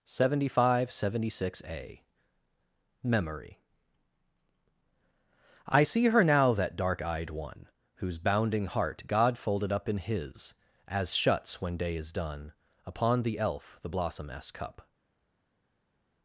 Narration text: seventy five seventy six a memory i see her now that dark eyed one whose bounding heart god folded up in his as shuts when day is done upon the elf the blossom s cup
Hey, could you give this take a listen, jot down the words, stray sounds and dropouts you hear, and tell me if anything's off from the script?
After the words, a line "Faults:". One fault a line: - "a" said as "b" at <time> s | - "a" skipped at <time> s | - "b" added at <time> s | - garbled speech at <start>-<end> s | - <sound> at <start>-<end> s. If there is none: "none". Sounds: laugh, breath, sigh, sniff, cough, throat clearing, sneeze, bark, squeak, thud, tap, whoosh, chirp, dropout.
seventy five seventy six a memory i see her now that dark eyed one whose bounding heart god folded up in his as shuts when day is done upon the elf the blossom s cup
Faults:
none